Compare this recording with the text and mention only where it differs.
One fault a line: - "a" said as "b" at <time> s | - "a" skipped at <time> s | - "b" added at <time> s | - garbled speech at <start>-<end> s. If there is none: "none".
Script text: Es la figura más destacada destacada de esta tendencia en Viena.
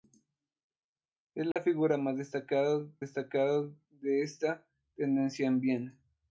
none